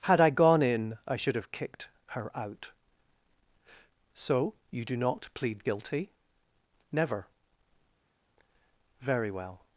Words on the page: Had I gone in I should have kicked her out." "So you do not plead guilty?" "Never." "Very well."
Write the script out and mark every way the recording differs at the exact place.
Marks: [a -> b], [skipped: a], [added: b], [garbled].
Had I gone in I should have kicked her out." "So you do not plead guilty?" "Never." "Very well."